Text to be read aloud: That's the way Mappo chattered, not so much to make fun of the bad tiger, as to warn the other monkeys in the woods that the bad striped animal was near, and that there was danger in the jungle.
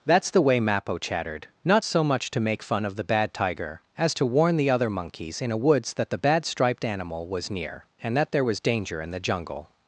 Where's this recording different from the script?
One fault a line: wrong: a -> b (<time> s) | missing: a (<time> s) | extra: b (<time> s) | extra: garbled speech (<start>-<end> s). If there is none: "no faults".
wrong: the -> a (5.5 s)